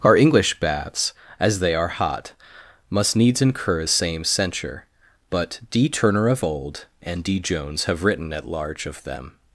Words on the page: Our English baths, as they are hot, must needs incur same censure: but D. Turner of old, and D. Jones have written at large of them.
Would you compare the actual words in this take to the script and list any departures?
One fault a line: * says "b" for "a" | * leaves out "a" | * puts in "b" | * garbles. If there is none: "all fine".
all fine